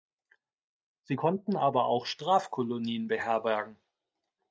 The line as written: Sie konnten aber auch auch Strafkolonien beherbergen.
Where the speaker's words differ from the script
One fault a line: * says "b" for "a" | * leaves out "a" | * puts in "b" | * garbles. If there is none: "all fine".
* leaves out "auch"